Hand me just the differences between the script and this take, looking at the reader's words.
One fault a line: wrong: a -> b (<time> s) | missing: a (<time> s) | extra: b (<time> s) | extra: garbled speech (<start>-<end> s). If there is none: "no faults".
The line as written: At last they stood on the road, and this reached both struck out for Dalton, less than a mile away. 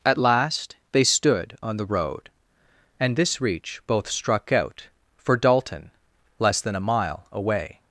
wrong: reached -> reach (3.4 s)